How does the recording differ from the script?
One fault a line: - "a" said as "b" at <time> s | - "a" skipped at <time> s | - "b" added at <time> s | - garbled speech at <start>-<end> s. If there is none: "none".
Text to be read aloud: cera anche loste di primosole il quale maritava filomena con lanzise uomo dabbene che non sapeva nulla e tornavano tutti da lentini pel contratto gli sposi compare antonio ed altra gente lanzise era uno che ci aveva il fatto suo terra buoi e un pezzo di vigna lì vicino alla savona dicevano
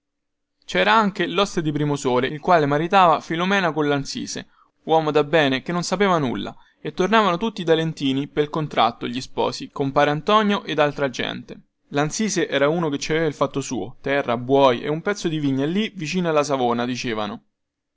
none